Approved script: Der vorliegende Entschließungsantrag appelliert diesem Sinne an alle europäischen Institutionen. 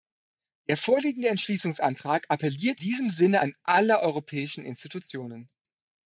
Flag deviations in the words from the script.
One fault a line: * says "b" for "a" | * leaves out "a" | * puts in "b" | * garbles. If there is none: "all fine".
all fine